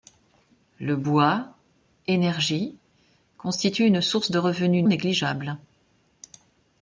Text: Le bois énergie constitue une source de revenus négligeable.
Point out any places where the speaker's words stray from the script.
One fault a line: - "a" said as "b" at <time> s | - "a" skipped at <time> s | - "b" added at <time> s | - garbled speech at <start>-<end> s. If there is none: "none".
none